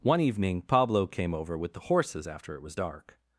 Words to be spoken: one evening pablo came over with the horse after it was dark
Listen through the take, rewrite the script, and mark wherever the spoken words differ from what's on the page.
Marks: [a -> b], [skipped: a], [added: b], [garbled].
one evening pablo came over with the [horse -> horses] after it was dark